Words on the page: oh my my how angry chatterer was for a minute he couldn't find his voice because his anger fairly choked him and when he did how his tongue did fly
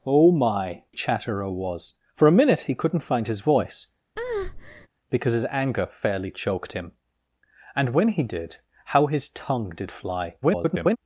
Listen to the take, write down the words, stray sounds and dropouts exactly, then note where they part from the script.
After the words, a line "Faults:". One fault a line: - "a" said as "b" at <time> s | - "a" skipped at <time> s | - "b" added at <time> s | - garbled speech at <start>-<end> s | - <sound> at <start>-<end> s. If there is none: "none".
oh my chatterer was for a minute he couldn't find his voice because his anger fairly choked him and when he did how his tongue did fly [garbled]
Faults:
- "my how angry" skipped at 0.8 s
- breath at 4.2-4.9 s
- garbled speech at 10.4-11.0 s